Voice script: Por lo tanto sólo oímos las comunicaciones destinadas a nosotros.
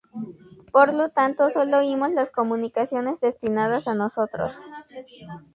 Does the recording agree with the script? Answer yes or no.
yes